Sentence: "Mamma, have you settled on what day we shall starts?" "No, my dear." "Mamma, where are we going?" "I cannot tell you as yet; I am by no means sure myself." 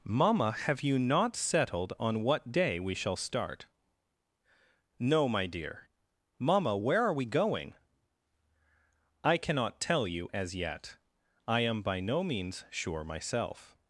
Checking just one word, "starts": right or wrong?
wrong